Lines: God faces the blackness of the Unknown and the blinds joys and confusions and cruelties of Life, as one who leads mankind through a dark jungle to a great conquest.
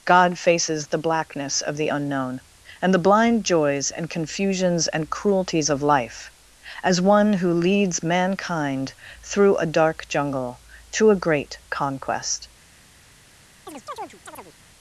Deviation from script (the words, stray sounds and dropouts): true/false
true